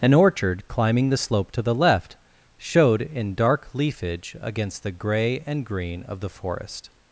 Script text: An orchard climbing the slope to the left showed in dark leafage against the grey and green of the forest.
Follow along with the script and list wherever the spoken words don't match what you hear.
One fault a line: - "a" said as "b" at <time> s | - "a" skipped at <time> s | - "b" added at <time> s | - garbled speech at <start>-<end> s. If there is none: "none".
none